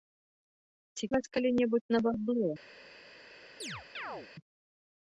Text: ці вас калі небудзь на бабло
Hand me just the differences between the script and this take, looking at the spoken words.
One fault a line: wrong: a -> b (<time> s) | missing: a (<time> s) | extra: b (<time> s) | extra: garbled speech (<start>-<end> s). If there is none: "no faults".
no faults